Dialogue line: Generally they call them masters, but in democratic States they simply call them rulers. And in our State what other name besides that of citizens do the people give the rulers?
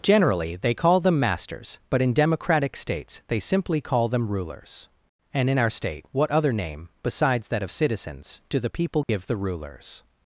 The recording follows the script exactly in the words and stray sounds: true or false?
false